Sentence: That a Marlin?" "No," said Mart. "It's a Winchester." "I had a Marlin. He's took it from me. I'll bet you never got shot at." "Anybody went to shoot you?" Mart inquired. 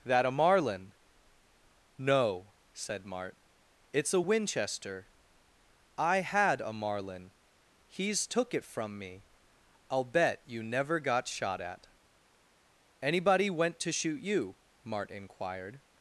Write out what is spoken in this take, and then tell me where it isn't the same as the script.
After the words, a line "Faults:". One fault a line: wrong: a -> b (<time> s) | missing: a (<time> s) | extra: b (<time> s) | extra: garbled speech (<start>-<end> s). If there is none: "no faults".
That a Marlin?" "No," said Mart. "It's a Winchester." "I had a Marlin. He's took it from me. I'll bet you never got shot at." "Anybody went to shoot you?" Mart inquired.
Faults:
no faults